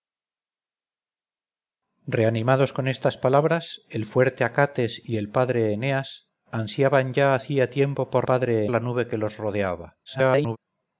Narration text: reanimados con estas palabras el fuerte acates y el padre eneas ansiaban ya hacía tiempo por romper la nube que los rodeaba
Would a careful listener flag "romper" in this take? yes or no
yes